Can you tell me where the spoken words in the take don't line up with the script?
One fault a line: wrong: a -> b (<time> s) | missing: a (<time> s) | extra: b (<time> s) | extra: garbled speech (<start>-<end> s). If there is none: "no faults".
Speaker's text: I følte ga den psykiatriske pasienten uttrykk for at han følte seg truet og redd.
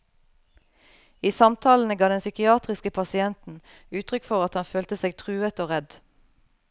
wrong: følte -> samtalene (1.4 s)